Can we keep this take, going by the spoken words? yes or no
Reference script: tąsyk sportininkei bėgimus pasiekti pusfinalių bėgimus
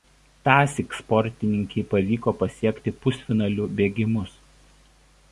no